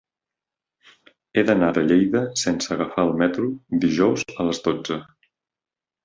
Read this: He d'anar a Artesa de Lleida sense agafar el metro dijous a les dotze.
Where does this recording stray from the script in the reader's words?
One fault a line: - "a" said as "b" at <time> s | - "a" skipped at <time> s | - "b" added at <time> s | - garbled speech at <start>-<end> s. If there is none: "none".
- "a Artesa" skipped at 1.7 s